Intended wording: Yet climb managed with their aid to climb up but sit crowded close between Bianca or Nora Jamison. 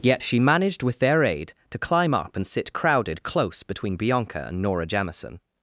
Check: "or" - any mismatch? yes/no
yes